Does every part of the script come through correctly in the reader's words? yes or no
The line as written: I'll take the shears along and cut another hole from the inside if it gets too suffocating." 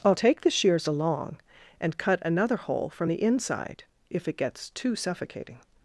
yes